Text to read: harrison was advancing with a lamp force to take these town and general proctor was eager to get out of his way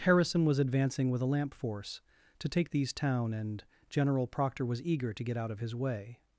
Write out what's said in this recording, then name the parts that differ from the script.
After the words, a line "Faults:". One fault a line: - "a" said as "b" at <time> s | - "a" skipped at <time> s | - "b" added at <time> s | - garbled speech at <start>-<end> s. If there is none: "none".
harrison was advancing with a lamp force to take these town and general proctor was eager to get out of his way
Faults:
none